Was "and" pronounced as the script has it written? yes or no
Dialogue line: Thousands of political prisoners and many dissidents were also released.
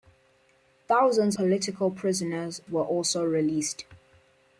no